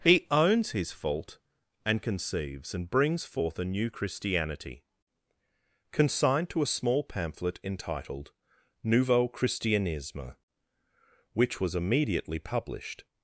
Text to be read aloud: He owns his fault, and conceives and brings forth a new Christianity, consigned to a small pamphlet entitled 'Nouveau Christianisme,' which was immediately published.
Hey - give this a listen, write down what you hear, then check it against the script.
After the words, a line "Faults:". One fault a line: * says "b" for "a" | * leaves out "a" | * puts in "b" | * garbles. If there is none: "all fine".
He owns his fault, and conceives and brings forth a new Christianity, consigned to a small pamphlet entitled 'Nouveau Christianisme,' which was immediately published.
Faults:
all fine